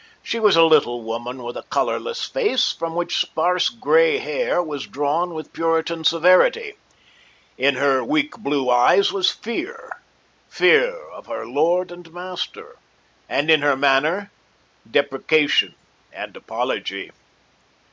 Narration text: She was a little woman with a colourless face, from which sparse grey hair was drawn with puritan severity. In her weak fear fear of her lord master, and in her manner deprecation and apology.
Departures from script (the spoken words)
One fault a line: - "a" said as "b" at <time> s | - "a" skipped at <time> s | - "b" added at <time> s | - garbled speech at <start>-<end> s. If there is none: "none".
- "blue eyes was" added at 8.4 s
- "and" added at 11.9 s